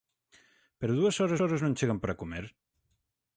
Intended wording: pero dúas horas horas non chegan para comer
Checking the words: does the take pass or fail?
pass